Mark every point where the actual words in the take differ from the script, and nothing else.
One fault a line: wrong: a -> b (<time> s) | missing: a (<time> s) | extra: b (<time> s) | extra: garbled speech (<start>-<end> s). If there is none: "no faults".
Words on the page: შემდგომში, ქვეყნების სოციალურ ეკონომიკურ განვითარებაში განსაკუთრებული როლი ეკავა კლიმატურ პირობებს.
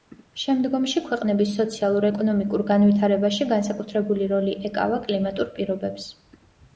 no faults